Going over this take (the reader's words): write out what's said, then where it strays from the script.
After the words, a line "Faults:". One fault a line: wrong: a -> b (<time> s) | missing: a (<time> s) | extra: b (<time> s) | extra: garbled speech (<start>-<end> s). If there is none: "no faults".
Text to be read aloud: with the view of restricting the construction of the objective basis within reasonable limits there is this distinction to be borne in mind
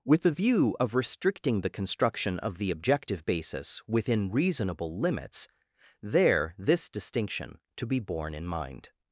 with the view of restricting the construction of the objective basis within reasonable limits there this distinction to be borne in mind
Faults:
missing: is (6.5 s)